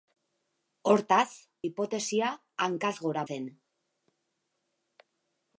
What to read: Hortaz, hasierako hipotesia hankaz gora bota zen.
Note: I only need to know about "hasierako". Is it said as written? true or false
false